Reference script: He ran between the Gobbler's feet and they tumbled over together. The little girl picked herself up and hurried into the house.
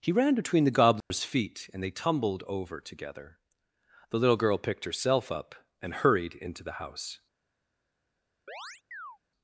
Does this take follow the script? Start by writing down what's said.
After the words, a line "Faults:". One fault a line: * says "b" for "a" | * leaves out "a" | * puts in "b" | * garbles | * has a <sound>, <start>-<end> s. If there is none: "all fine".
He ran between the Gobbler's feet and they tumbled over together. The little girl picked herself up and hurried into the house.
Faults:
* has a dropout, 1.0-1.1 s
* has a chirp, 8.5-9.2 s